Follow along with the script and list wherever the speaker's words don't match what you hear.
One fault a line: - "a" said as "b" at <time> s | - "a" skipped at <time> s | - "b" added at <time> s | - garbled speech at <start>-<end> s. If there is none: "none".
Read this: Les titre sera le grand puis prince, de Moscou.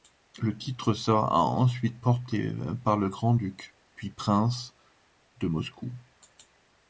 - "Les" said as "Le" at 0.4 s
- "ensuite porté par" added at 1.4 s
- "duc" added at 3.3 s